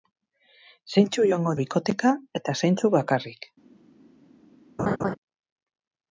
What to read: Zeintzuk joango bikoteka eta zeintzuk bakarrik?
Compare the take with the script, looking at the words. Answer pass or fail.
pass